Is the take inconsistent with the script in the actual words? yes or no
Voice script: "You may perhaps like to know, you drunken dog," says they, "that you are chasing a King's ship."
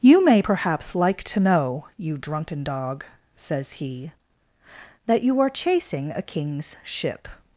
yes